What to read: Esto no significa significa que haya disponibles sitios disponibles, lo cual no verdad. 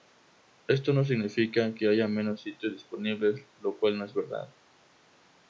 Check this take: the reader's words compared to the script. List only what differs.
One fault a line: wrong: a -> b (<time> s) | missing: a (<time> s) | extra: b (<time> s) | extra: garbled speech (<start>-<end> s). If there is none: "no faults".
missing: significa (1.8 s)
wrong: disponibles -> menos (2.1 s)
extra: es (4.0 s)